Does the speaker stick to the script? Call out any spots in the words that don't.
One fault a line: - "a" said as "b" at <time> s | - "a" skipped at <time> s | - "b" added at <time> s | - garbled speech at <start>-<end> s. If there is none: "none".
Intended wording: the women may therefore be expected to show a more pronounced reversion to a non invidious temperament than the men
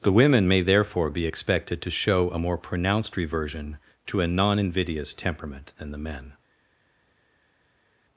none